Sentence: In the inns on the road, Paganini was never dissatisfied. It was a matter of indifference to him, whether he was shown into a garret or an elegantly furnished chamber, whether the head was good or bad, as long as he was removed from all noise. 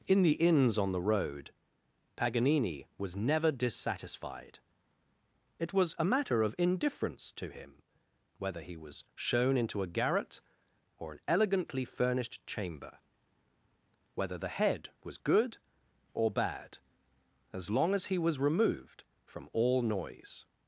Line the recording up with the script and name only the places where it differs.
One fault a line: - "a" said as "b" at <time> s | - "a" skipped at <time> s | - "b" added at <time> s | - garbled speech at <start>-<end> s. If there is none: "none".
none